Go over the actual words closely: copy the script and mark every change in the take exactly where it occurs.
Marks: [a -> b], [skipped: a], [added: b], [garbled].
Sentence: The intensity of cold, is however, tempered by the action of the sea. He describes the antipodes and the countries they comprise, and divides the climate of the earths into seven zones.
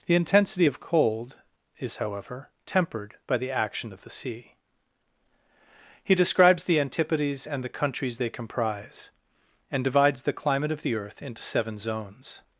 The intensity of cold, is however, tempered by the action of the sea. He describes the antipodes and the countries they comprise, and divides the climate of the [earths -> earth] into seven zones.